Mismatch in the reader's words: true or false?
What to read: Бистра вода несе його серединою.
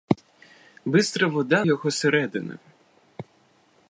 true